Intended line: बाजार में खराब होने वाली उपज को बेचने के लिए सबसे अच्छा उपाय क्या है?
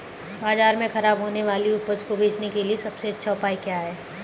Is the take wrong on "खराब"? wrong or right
right